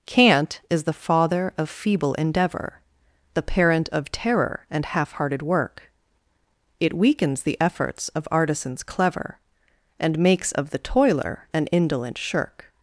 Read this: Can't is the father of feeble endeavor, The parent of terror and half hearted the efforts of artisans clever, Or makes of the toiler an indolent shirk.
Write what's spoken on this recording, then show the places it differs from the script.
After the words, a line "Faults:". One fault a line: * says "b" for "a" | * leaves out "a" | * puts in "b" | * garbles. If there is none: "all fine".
Can't is the father of feeble endeavor, The parent of terror and half hearted work; It weakens the efforts of artisans clever, And makes of the toiler an indolent shirk.
Faults:
* puts in "work It weakens"
* says "And" for "Or"